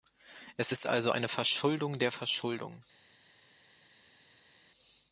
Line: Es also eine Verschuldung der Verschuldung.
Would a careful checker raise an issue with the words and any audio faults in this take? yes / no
yes